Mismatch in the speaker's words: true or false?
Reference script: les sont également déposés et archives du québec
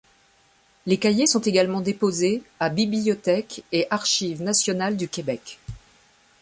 true